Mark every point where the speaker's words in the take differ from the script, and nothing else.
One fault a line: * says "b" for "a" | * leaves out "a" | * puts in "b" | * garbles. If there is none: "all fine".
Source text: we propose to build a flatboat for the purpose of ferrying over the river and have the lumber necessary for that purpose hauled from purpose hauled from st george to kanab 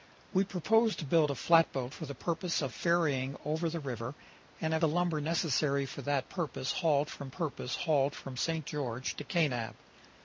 all fine